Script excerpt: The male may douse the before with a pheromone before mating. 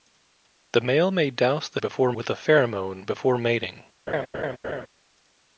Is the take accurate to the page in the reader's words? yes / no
yes